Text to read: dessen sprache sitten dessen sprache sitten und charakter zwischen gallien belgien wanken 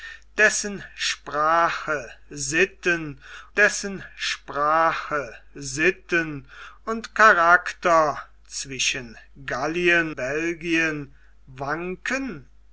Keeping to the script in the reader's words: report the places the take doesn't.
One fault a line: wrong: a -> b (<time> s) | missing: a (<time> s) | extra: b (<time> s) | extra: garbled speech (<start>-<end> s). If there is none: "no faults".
no faults